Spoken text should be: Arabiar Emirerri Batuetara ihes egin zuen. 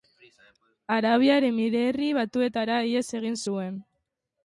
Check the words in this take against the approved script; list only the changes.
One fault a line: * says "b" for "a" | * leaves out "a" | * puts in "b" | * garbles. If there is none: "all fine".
all fine